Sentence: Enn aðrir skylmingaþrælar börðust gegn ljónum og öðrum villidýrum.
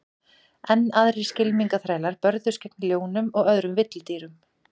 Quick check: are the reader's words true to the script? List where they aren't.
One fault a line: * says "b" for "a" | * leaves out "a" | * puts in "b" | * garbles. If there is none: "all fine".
all fine